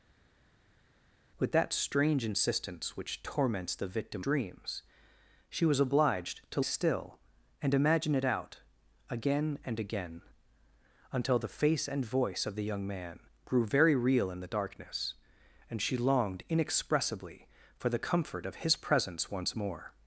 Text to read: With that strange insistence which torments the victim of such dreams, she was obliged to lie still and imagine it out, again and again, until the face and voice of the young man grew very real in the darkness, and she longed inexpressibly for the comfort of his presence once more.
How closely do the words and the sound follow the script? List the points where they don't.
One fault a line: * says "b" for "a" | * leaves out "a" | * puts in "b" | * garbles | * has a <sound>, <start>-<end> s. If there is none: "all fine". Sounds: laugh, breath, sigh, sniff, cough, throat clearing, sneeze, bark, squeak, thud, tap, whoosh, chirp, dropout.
* leaves out "of such"
* leaves out "lie"